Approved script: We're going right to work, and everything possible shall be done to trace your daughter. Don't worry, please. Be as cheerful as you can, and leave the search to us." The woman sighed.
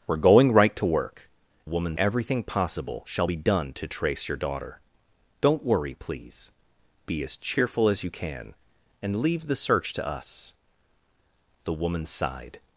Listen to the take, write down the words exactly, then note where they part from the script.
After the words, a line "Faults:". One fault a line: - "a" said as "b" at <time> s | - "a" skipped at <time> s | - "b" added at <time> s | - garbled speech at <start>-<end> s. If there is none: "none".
We're going right to work, woman everything possible shall be done to trace your daughter. Don't worry, please. Be as cheerful as you can, and leave the search to us." The woman sighed.
Faults:
- "and" said as "woman" at 1.6 s